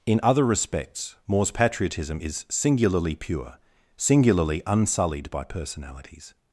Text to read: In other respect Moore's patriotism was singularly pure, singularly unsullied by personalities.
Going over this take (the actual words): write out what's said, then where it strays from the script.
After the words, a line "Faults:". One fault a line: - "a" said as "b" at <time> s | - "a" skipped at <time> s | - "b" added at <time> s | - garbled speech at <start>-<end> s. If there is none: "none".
In other respects Moore's patriotism is singularly pure, singularly unsullied by personalities.
Faults:
- "respect" said as "respects" at 0.4 s
- "was" said as "is" at 2.2 s